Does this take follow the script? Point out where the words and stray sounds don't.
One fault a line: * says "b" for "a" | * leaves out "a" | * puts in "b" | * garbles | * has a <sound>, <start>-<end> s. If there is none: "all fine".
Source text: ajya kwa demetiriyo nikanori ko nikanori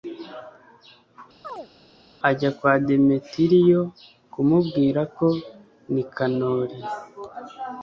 * has a chirp, 1.4-1.7 s
* says "kumubwira" for "nikanori"